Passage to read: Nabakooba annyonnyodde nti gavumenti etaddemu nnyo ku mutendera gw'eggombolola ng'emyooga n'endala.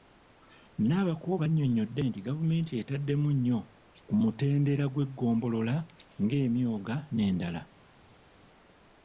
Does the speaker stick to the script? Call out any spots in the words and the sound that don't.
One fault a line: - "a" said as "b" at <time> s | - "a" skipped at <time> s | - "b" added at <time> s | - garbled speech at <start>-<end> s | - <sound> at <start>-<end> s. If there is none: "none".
none